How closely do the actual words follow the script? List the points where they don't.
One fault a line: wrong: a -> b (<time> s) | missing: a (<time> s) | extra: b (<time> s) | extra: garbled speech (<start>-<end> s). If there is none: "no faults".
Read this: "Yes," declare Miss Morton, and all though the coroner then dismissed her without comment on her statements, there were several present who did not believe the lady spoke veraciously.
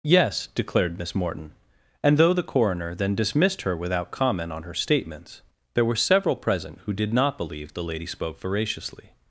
wrong: declare -> declared (0.5 s)
missing: all (2.2 s)